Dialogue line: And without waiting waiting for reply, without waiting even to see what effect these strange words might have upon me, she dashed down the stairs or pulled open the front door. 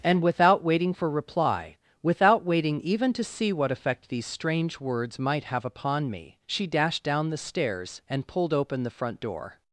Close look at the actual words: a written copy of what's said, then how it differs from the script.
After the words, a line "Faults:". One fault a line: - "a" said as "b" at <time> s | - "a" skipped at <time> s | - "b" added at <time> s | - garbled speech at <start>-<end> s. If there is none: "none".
And without waiting for reply, without waiting even to see what effect these strange words might have upon me, she dashed down the stairs and pulled open the front door.
Faults:
- "waiting" skipped at 0.9 s
- "or" said as "and" at 8.1 s